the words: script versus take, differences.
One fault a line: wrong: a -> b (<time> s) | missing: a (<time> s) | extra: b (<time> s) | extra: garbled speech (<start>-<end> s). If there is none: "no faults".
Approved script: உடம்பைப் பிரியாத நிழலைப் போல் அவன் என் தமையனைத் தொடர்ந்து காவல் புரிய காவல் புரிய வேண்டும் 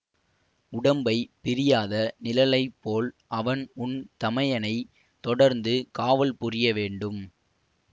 wrong: என் -> உன் (3.8 s)
missing: காவல் புரிய (6.7 s)